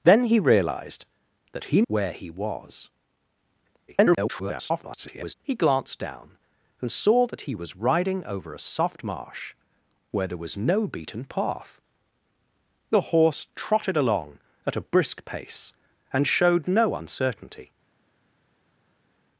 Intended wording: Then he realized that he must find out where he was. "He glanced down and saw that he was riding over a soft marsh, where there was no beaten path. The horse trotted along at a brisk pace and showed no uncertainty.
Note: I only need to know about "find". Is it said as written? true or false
false